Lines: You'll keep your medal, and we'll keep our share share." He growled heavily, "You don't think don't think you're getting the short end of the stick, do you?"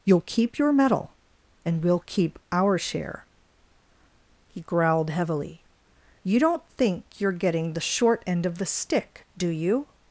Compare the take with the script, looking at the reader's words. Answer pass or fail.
fail